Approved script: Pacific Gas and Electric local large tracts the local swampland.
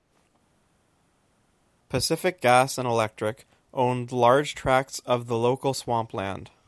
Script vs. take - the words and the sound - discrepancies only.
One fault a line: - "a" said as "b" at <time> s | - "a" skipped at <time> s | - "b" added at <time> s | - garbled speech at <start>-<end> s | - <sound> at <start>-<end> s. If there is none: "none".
- "local" said as "owned" at 3.7 s
- "of" added at 5.0 s